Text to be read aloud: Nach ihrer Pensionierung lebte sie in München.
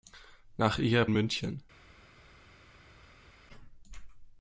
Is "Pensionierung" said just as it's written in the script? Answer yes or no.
no